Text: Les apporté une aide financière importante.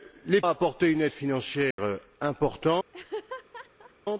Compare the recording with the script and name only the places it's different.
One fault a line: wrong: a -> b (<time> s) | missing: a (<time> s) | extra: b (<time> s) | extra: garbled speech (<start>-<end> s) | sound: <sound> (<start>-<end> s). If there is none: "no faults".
sound: dropout (1.7-1.8 s)
sound: laugh (2.9-3.9 s)